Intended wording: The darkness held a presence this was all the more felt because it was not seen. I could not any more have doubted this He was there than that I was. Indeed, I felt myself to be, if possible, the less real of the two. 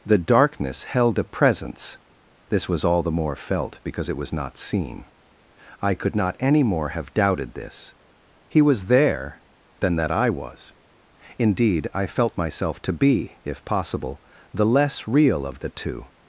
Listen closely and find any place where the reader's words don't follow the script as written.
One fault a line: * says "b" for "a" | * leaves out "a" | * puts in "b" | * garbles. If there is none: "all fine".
all fine